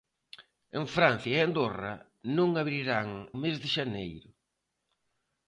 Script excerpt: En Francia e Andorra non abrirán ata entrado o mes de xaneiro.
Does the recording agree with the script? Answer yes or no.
no